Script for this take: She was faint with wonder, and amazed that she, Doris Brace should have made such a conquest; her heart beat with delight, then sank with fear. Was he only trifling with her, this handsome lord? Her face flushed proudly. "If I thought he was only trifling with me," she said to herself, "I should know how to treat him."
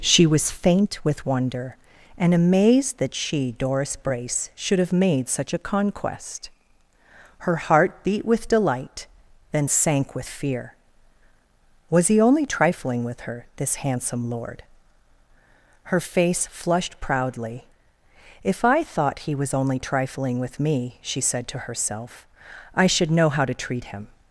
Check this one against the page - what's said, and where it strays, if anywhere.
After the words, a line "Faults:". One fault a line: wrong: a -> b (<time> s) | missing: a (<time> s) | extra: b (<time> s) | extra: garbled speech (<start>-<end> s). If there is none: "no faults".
She was faint with wonder, and amazed that she, Doris Brace should have made such a conquest; her heart beat with delight, then sank with fear. Was he only trifling with her, this handsome lord? Her face flushed proudly. "If I thought he was only trifling with me," she said to herself, "I should know how to treat him."
Faults:
no faults